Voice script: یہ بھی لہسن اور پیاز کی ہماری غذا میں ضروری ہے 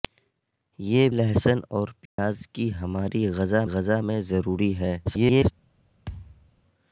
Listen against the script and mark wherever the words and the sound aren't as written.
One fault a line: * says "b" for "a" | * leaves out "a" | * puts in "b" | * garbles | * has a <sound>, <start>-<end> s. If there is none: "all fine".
* leaves out "بھی"
* has a dropout, 2.1-2.2 s
* puts in "غذا"
* garbles
* has a thud, 6.1-6.5 s